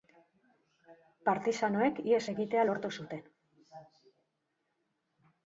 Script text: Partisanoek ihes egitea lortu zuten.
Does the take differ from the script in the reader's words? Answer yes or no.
no